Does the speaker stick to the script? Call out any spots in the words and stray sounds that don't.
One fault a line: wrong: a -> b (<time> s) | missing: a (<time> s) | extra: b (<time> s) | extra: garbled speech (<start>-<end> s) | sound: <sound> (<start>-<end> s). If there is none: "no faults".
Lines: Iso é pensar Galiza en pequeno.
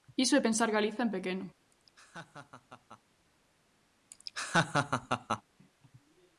sound: laugh (1.7-3.0 s)
sound: laugh (4.1-5.4 s)